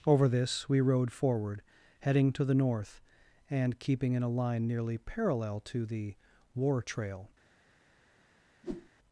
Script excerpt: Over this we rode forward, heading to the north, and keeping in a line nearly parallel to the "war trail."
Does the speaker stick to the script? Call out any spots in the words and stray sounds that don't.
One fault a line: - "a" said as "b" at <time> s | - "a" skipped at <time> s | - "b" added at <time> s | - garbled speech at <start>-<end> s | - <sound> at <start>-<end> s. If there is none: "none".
- whoosh at 8.6-8.9 s